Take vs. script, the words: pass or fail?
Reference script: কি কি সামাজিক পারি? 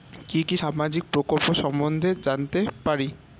fail